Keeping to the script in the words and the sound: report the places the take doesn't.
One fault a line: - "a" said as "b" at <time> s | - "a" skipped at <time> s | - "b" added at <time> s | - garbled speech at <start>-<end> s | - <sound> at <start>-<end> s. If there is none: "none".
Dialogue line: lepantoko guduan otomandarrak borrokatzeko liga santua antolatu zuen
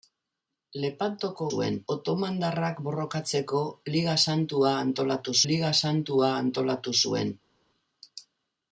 - "guduan" said as "zuen" at 1.5 s
- "liga santua antolatu" added at 5.5 s